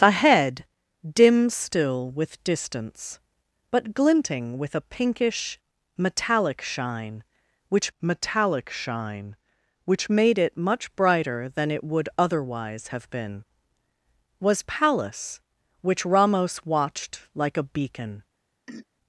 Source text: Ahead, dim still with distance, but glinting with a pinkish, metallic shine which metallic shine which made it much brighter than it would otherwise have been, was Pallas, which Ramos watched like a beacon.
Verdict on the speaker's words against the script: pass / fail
pass